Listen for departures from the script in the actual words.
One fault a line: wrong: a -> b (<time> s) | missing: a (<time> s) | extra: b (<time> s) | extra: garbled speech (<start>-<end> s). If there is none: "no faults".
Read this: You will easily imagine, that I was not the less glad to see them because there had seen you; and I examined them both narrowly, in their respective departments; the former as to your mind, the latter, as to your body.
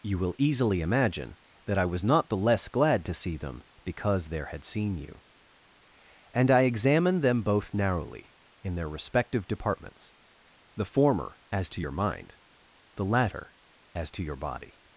no faults